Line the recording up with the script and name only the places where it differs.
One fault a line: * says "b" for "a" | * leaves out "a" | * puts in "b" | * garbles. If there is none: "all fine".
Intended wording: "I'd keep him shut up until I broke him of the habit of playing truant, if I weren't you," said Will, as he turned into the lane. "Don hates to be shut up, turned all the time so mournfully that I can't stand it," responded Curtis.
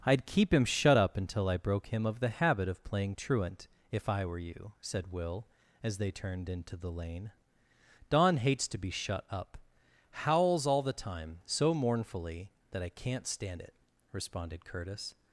* says "were" for "weren't"
* says "they" for "he"
* says "howls" for "turned"